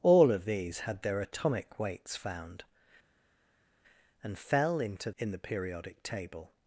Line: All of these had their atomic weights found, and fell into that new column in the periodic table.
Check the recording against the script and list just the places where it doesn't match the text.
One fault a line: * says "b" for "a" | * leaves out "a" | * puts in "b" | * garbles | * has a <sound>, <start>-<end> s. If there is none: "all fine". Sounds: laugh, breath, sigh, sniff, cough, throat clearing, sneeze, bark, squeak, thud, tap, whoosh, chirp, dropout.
* leaves out "that new column"